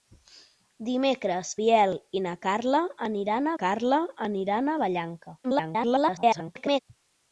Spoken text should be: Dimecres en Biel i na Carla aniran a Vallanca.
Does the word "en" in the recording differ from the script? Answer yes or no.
yes